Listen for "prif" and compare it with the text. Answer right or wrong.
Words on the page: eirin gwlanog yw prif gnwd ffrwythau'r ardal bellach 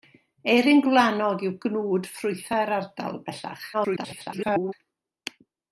wrong